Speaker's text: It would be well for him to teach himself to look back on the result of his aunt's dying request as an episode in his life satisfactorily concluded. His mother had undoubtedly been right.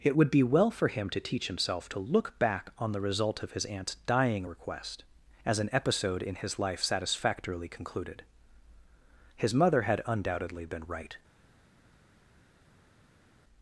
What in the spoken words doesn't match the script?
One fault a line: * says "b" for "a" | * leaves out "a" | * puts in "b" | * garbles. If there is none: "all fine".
all fine